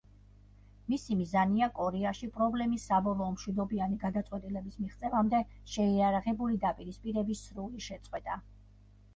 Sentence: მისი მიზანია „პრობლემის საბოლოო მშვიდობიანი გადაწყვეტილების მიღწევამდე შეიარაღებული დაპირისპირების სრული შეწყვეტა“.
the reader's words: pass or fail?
fail